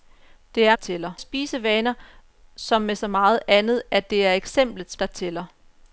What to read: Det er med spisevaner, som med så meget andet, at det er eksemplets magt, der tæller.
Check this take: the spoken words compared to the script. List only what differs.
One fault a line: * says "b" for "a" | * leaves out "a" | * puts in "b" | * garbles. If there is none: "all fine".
* says "tæller" for "med"
* leaves out "magt"